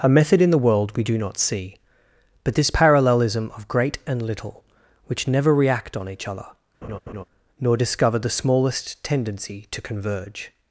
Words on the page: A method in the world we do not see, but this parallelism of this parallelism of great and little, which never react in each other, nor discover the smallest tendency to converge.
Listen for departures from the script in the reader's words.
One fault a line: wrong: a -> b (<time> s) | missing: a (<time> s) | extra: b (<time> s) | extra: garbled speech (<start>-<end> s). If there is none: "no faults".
missing: this parallelism of (3.7 s)
wrong: in -> on (6.0 s)